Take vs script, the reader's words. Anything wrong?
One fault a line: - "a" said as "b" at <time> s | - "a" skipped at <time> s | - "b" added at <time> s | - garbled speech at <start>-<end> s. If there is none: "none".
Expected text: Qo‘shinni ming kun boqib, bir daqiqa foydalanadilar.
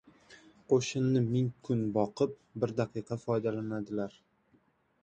none